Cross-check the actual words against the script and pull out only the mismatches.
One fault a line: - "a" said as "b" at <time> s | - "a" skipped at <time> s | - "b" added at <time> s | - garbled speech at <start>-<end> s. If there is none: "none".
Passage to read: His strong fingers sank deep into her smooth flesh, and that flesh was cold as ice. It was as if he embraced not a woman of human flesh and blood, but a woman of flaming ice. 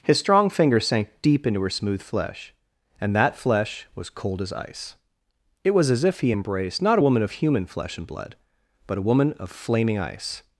none